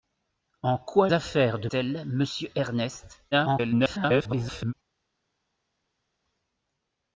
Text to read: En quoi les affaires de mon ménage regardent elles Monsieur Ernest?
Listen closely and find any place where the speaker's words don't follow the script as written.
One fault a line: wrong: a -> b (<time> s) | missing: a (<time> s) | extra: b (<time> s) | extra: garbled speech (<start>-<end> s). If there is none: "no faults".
missing: les (1.1 s)
missing: mon ménage regardent (1.7 s)
extra: garbled speech (3.3-4.7 s)